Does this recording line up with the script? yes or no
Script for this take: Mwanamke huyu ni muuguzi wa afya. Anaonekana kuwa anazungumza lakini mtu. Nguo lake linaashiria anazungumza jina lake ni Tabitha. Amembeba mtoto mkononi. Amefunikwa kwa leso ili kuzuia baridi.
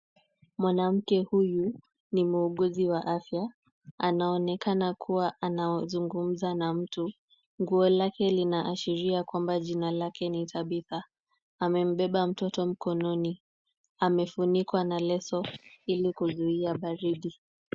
no